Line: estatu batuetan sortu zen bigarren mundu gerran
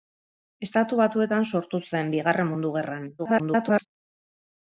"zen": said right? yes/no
yes